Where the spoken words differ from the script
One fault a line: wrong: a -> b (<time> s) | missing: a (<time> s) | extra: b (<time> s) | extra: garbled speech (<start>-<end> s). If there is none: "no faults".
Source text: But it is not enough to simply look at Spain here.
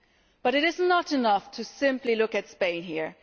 no faults